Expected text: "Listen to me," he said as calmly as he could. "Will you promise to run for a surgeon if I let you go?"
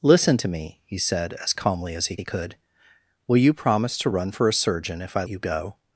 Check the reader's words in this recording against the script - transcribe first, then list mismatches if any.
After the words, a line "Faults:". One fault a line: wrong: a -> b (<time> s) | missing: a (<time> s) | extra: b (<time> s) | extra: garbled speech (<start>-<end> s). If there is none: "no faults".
"Listen to me," he said as calmly as he he could. "Will you promise to run for a surgeon if I you go?"
Faults:
extra: he (2.2 s)
missing: let (5.2 s)